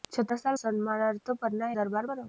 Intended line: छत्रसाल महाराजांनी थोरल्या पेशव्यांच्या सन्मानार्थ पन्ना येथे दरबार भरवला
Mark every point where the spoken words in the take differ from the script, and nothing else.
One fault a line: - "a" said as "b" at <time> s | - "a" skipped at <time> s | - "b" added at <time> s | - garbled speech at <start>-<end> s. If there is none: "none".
- "महाराजांनी थोरल्या पेशव्यांच्या" skipped at 0.6 s
- "येथे" skipped at 1.7 s